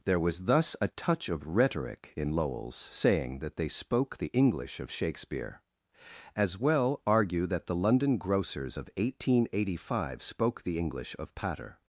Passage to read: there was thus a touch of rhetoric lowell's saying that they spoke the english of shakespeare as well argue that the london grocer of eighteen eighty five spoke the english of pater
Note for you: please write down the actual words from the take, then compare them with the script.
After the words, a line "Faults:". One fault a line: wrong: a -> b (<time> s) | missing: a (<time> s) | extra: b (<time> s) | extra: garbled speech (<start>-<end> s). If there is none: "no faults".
there was thus a touch of rhetoric in lowell's saying that they spoke the english of shakespeare as well argue that the london grocers of eighteen eighty five spoke the english of pater
Faults:
extra: in (2.1 s)
wrong: grocer -> grocers (8.2 s)